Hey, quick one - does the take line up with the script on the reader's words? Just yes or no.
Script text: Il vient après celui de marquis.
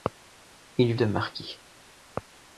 no